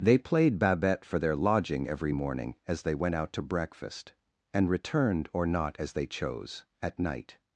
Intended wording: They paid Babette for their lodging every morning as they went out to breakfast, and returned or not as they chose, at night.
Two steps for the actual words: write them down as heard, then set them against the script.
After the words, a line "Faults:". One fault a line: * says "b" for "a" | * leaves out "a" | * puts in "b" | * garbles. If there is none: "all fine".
They played Babette for their lodging every morning as they went out to breakfast, and returned or not as they chose, at night.
Faults:
* says "played" for "paid"